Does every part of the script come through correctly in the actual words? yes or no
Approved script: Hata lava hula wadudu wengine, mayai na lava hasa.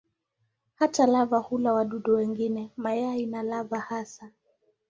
yes